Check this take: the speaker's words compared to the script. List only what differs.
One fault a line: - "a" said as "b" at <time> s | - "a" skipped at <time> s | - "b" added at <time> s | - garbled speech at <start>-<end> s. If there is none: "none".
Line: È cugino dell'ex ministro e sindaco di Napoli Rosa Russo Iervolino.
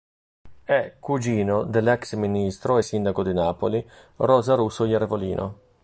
none